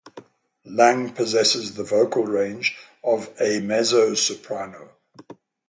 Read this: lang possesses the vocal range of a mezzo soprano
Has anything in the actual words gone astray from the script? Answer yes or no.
no